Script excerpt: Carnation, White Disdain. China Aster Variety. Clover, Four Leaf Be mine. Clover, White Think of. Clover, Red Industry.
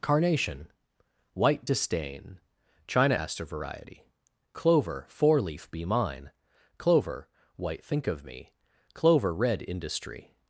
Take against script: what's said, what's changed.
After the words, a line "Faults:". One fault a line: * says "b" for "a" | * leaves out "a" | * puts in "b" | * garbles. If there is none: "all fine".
Carnation, White Disdain. China Aster Variety. Clover, Four Leaf Be mine. Clover, White Think of me. Clover, Red Industry.
Faults:
* puts in "me"